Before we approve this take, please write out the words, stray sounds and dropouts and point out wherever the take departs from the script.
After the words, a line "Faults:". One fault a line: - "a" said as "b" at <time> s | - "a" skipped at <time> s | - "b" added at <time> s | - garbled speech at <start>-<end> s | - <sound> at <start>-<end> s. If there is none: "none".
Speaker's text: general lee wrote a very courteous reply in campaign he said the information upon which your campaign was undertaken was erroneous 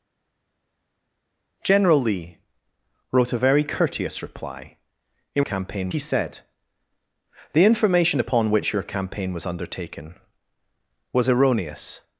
general lee wrote a very courteous reply in campaign he said the information upon which your campaign was undertaken was erroneous
Faults:
none